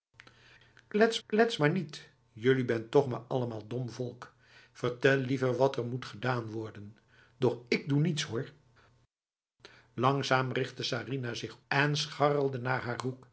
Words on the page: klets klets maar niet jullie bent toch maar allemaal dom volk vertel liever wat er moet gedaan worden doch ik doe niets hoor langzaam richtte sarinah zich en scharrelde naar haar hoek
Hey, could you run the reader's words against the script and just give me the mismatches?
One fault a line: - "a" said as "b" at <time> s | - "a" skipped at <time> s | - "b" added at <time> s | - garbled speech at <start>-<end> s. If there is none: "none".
none